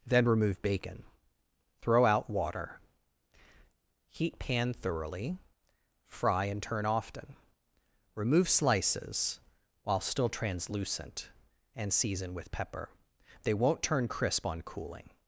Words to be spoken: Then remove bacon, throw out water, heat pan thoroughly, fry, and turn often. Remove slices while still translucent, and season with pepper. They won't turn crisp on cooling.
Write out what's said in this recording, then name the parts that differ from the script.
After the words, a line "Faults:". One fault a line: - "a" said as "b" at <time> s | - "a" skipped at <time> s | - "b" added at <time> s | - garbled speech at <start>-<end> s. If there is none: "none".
Then remove bacon, throw out water, heat pan thoroughly, fry, and turn often. Remove slices while still translucent, and season with pepper. They won't turn crisp on cooling.
Faults:
none